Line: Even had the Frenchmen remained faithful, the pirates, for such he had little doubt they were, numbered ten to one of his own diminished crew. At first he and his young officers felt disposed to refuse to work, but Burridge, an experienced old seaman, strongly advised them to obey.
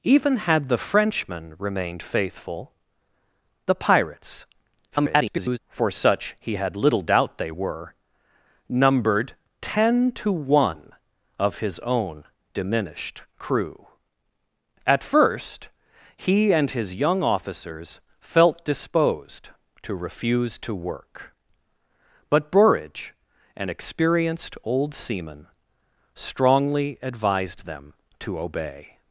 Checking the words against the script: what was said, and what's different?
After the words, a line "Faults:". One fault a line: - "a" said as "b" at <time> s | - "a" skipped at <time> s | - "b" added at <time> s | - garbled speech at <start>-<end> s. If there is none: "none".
Even had the Frenchmen remained faithful, the pirates, [garbled] for such he had little doubt they were, numbered ten to one of his own diminished crew. At first he and his young officers felt disposed to refuse to work, but Burridge, an experienced old seaman, strongly advised them to obey.
Faults:
- garbled speech at 4.9-5.6 s